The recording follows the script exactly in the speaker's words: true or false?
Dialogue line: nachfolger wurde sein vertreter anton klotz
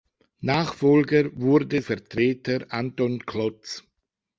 false